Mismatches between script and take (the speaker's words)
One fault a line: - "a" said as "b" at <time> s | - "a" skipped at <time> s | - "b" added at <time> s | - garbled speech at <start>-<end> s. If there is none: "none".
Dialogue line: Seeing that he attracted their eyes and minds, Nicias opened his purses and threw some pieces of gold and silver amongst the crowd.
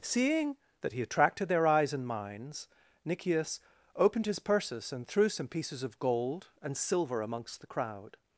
none